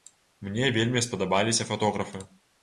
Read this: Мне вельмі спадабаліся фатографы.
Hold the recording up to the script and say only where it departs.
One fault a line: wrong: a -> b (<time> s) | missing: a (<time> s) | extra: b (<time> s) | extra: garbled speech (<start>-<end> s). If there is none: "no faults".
no faults